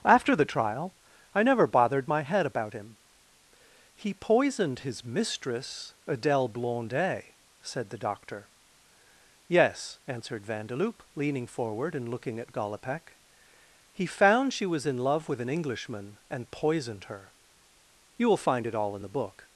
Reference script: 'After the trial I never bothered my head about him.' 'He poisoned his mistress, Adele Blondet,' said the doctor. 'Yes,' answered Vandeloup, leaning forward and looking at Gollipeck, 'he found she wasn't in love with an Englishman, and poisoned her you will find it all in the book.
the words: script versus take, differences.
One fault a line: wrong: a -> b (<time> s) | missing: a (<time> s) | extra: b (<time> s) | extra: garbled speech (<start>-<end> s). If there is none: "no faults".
wrong: wasn't -> was (14.7 s)